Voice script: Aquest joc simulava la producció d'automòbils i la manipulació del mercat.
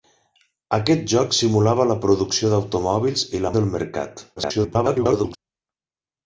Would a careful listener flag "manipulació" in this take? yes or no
yes